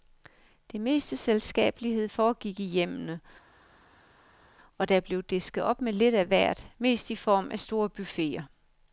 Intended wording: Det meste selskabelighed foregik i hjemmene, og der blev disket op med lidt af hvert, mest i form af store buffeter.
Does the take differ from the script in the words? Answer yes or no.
no